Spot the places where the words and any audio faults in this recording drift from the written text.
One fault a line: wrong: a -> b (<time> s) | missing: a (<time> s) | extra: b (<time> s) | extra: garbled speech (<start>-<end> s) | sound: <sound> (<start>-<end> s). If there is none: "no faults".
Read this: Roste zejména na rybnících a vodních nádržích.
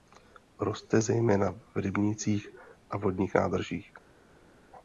wrong: na -> v (1.5 s)